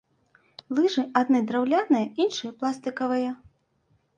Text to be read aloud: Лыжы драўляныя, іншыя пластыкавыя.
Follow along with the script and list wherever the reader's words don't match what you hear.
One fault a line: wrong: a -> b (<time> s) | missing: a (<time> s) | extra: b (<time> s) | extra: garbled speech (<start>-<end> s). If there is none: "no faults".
extra: адны (1.2 s)